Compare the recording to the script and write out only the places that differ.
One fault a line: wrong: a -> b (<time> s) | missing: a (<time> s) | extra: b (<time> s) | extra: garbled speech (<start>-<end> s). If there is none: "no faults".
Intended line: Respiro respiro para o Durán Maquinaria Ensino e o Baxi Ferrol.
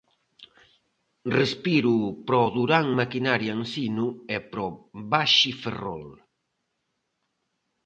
missing: respiro (1.9 s)
extra: para (4.5 s)